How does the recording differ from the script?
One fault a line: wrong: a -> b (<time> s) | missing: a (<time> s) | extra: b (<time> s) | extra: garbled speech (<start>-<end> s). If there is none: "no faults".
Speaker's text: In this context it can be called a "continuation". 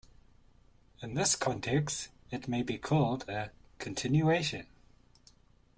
wrong: can -> may (2.5 s)